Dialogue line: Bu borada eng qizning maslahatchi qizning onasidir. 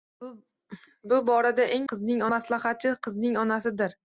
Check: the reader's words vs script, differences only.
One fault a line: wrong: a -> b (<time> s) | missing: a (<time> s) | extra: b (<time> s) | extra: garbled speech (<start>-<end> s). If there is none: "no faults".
no faults